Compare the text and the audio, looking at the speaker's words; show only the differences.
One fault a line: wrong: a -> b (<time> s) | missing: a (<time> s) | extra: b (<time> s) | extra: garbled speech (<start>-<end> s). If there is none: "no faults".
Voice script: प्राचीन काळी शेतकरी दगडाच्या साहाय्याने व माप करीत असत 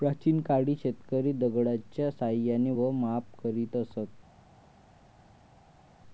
no faults